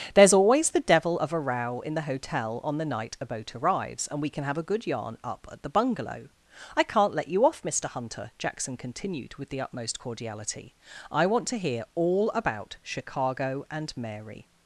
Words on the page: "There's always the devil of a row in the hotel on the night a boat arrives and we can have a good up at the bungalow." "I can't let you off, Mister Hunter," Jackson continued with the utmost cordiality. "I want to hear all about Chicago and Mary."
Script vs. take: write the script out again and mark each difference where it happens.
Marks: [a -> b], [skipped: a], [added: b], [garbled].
"There's always the devil of a row in the hotel on the night a boat arrives and we can have a good [added: yarn] up at the bungalow." "I can't let you off, Mister Hunter," Jackson continued with the utmost cordiality. "I want to hear all about Chicago and Mary."